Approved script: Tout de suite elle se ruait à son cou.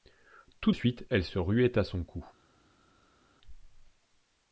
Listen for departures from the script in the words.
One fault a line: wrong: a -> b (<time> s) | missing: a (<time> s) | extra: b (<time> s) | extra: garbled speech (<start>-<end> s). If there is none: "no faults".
missing: de (0.7 s)